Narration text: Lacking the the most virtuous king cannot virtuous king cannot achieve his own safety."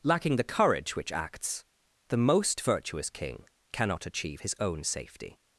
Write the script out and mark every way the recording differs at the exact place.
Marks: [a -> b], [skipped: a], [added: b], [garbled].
Lacking the [the most virtuous king cannot -> courage which acts the most] virtuous king cannot achieve his own safety."